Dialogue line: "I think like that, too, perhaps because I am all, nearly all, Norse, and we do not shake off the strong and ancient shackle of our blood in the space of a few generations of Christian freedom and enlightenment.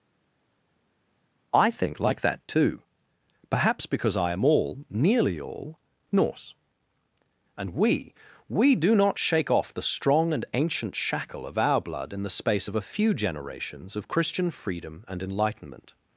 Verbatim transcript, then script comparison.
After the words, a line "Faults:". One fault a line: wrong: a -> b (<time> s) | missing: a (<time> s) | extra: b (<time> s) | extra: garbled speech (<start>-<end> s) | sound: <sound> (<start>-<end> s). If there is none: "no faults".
"I think like that, too, perhaps because I am all, nearly all, Norse, and we we do not shake off the strong and ancient shackle of our blood in the space of a few generations of Christian freedom and enlightenment.
Faults:
extra: we (8.5 s)